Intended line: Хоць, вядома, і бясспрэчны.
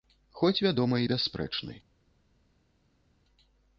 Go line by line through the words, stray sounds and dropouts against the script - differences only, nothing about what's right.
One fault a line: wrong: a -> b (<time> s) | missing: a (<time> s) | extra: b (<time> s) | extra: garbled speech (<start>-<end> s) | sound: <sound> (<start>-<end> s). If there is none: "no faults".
no faults